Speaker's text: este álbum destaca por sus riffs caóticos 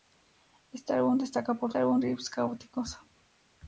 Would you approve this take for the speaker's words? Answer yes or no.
no